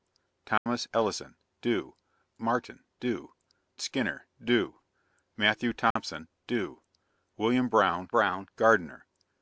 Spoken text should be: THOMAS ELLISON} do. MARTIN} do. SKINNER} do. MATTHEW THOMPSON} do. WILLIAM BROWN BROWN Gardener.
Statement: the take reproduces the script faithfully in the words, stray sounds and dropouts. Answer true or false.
false